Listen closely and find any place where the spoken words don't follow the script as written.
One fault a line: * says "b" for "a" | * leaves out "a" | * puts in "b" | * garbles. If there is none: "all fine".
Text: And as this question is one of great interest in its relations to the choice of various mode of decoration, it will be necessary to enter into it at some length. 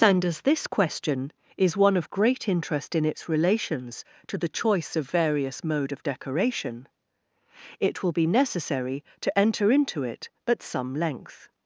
all fine